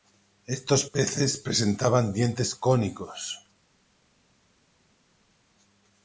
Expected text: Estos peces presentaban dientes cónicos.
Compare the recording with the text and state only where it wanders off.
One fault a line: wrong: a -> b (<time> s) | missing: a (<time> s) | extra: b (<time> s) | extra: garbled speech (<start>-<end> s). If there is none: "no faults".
no faults